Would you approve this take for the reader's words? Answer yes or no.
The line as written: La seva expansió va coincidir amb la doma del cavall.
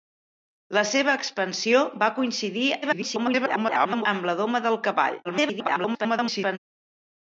no